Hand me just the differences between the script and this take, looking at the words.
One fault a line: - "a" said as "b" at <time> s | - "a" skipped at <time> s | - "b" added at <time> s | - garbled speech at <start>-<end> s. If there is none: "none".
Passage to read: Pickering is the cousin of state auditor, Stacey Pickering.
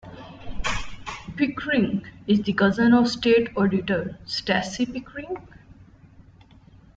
none